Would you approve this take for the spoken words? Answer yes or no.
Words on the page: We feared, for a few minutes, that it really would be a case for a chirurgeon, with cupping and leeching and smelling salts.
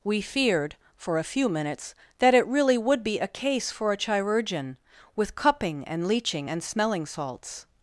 yes